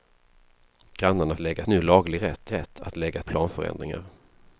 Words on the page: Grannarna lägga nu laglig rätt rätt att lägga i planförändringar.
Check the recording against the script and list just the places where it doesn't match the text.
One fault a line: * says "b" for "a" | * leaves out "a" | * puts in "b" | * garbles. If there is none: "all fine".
all fine